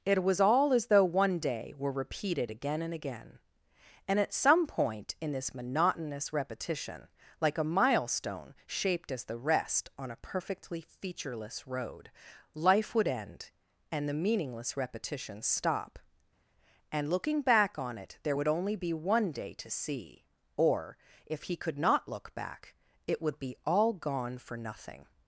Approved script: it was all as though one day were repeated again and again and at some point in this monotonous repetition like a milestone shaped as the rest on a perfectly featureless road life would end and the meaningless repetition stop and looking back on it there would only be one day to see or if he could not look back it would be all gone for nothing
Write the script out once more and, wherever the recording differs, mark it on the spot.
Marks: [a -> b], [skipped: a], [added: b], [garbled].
it was all as though one day were repeated again and again and at some point in this monotonous repetition like a milestone shaped as the rest on a perfectly featureless road life would end and the meaningless repetition stop and looking back on it there would only be one day to see or if he could not look back it would be all gone for nothing